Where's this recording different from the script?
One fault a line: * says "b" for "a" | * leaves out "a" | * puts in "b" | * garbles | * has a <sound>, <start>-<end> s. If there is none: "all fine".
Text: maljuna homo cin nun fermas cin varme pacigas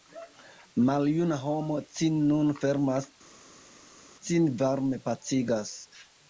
all fine